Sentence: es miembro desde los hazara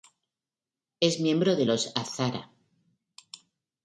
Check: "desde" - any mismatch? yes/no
yes